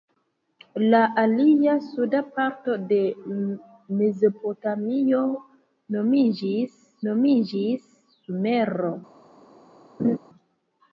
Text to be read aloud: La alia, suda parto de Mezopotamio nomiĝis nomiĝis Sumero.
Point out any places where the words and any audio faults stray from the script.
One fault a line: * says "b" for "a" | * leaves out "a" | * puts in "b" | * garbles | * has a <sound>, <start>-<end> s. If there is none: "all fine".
* has a laugh, 10.0-10.2 s